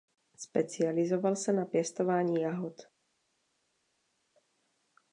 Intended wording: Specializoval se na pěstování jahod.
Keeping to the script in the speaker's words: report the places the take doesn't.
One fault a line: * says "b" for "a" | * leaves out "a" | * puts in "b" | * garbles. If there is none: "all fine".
all fine